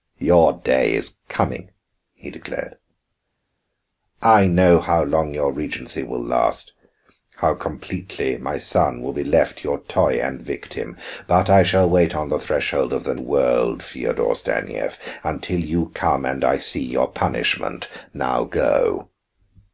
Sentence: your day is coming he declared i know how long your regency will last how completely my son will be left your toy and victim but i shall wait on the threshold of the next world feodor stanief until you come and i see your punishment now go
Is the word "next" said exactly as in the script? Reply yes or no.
no